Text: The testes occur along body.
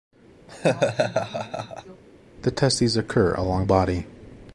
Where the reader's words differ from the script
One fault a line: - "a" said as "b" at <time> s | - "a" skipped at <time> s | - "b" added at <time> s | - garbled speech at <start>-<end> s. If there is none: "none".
none